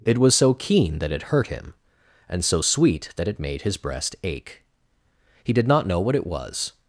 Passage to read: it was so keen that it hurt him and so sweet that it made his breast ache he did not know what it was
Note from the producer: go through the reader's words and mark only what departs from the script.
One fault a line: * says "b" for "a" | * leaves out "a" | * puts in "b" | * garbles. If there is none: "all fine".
all fine